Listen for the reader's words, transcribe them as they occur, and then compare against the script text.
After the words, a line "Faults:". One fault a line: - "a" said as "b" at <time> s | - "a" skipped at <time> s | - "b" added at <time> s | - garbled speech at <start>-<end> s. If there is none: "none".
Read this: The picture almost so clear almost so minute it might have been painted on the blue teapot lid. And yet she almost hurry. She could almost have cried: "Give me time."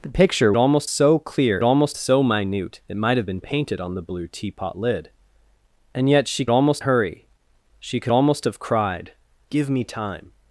The picture almost so clear almost so minute it might have been painted on the blue teapot lid. And yet she almost hurry. She could almost have cried: "Give me time."
Faults:
none